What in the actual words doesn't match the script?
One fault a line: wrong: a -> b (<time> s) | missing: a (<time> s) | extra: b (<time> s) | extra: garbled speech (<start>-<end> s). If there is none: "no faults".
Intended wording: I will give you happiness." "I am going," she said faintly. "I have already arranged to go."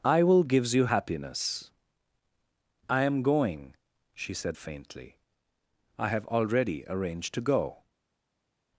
wrong: give -> gives (0.4 s)